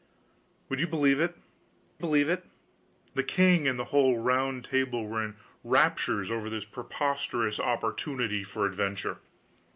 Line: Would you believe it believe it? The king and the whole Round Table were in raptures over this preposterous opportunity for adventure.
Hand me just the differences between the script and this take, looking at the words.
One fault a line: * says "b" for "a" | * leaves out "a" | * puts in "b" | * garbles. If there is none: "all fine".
all fine